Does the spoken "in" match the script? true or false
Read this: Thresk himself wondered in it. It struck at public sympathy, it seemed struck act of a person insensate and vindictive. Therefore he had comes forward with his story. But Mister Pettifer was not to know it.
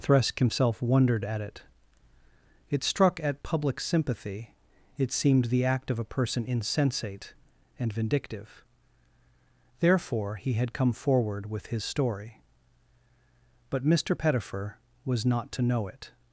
false